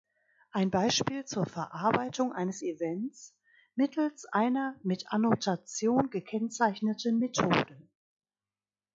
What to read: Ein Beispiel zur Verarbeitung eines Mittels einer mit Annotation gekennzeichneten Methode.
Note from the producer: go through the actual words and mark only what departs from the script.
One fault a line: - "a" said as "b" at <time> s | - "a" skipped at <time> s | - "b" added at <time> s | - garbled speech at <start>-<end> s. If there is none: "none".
- "Events" added at 2.6 s